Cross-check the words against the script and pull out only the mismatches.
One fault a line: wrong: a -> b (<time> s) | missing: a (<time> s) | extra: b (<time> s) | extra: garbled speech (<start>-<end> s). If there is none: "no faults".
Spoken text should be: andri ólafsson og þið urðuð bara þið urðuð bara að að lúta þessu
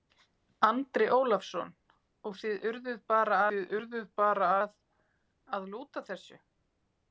no faults